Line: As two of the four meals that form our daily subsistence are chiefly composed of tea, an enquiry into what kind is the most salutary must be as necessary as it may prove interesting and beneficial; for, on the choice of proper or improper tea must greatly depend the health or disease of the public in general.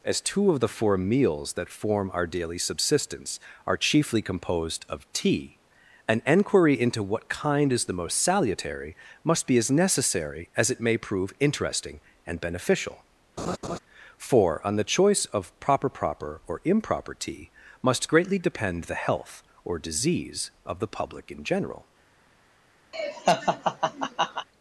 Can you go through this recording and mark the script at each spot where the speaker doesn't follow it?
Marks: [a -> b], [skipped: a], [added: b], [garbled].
As two of the four meals that form our daily subsistence are chiefly composed of tea, an enquiry into what kind is the most salutary must be as necessary as it may prove interesting and beneficial; for, on the choice of proper [added: proper] or improper tea must greatly depend the health or disease of the public in general.